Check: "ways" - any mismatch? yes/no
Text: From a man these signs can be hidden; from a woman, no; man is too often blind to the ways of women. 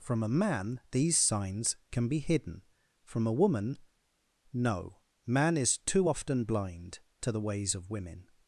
no